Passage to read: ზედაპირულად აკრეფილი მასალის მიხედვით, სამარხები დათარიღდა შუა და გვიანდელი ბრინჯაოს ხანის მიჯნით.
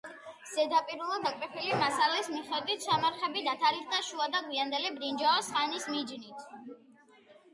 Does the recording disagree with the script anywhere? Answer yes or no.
no